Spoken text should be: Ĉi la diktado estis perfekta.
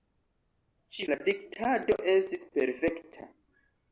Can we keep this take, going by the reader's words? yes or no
yes